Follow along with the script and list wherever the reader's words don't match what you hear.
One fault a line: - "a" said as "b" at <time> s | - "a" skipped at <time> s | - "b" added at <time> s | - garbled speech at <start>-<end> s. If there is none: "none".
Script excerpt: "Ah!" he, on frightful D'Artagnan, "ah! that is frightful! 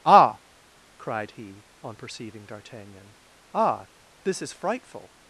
- "cried" added at 1.0 s
- "frightful" said as "perceiving" at 1.9 s
- "that" said as "this" at 4.2 s